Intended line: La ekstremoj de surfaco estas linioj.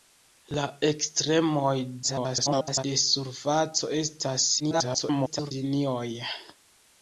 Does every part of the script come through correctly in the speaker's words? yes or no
no